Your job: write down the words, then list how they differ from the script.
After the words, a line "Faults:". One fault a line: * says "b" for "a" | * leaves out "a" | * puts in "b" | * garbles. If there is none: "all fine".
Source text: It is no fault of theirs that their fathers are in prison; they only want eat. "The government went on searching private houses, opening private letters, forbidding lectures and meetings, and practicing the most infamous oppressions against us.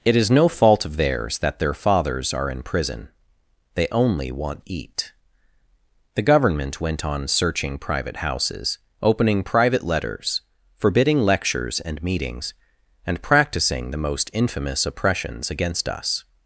It is no fault of theirs that their fathers are in prison; they only want eat. "The government went on searching private houses, opening private letters, forbidding lectures and meetings, and practicing the most infamous oppressions against us.
Faults:
all fine